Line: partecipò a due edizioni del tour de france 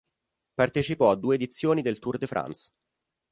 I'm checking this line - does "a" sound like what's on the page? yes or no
yes